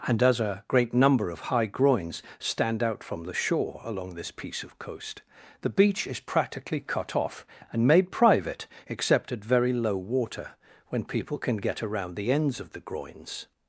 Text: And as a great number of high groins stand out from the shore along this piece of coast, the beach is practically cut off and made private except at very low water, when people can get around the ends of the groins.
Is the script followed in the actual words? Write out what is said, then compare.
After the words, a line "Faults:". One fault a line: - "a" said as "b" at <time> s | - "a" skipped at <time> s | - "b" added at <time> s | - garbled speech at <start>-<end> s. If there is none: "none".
And as a great number of high groins stand out from the shore along this piece of coast, the beach is practically cut off and made private except at very low water, when people can get around the ends of the groins.
Faults:
none